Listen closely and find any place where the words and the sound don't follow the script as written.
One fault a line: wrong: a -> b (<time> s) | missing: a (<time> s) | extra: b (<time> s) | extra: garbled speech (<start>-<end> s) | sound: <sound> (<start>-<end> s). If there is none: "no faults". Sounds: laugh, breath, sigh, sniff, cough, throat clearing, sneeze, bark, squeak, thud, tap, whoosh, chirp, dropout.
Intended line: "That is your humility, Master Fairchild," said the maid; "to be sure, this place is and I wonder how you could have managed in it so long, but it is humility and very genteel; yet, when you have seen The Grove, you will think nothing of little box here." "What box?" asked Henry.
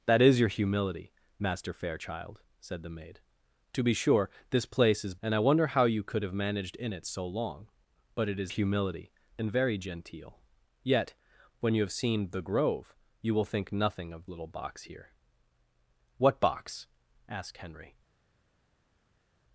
no faults